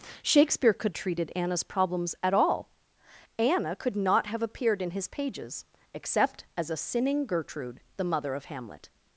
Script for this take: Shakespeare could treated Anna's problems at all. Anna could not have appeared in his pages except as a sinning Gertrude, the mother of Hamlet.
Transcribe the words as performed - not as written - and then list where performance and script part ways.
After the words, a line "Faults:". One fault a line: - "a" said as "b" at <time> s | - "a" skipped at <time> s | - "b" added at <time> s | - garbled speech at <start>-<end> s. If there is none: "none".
Shakespeare could treated Anna's problems at all. Anna could not have appeared in his pages except as a sinning Gertrude, the mother of Hamlet.
Faults:
none